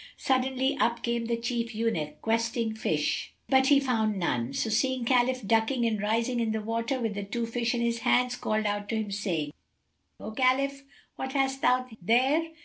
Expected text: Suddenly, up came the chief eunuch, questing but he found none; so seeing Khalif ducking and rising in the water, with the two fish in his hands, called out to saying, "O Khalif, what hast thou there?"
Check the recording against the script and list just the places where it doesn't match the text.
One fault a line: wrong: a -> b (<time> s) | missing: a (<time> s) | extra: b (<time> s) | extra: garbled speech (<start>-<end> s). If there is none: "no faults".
extra: fish (2.7 s)
extra: him (8.9 s)